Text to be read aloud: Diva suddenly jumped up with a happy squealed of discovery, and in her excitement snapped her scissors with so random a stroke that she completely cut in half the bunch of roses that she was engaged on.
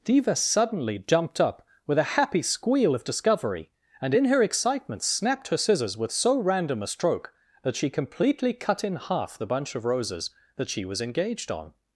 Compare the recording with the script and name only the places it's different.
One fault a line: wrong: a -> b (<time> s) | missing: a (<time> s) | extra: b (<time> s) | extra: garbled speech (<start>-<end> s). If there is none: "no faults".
wrong: squealed -> squeal (2.4 s)